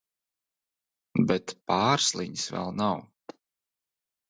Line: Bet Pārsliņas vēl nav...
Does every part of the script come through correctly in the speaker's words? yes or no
yes